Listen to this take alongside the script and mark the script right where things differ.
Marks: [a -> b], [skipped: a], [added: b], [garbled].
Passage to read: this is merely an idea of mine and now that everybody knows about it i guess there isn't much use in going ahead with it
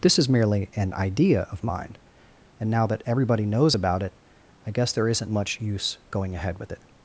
this is merely an idea of mine and now that everybody knows about it i guess there isn't much use [skipped: in] going ahead with it